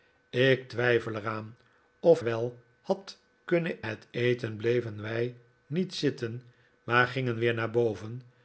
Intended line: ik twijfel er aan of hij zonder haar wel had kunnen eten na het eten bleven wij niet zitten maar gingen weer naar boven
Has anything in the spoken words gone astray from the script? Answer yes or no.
yes